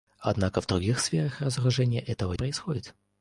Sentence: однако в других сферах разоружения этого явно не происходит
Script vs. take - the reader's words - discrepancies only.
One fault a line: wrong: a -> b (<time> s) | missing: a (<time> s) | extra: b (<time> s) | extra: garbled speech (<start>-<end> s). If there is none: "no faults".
missing: явно не (2.3 s)